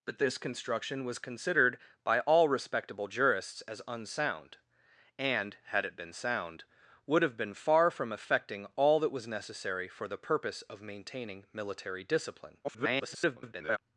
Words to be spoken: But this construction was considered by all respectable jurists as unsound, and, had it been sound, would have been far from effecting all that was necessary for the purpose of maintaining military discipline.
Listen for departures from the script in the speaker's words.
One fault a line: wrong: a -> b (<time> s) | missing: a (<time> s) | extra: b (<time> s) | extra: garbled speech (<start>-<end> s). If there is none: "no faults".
extra: garbled speech (12.6-13.8 s)